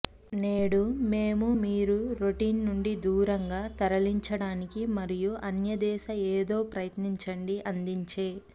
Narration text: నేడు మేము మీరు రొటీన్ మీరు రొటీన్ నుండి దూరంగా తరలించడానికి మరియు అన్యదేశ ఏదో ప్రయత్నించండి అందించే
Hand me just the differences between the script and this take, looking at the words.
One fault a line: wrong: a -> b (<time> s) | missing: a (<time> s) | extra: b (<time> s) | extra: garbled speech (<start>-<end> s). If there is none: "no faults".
missing: మీరు రొటీన్ (2.6 s)